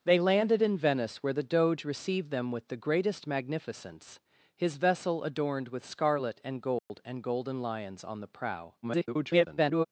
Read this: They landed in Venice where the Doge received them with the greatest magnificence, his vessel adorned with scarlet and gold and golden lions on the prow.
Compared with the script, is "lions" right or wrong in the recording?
right